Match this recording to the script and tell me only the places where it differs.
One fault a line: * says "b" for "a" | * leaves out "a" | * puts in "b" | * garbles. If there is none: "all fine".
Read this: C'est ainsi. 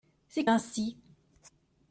all fine